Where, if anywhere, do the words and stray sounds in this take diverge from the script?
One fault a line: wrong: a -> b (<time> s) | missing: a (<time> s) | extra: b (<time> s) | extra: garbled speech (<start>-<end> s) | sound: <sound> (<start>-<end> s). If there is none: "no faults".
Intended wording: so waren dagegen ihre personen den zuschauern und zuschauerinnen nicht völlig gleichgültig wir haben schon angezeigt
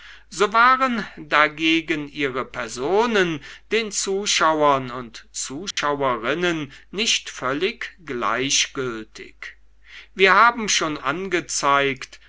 sound: dropout (5.7-5.8 s)